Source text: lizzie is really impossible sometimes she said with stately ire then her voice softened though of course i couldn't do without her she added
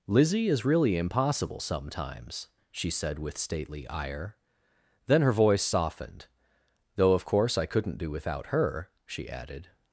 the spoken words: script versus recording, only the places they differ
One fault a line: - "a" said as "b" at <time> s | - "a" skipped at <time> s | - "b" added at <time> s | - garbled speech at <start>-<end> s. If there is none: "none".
none